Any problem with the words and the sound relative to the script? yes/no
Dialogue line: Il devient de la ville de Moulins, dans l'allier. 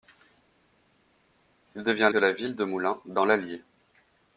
no